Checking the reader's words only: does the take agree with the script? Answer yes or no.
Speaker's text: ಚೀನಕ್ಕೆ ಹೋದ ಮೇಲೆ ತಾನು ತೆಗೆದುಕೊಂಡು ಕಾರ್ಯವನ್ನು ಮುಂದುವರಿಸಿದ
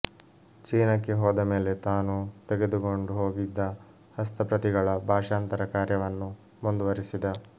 no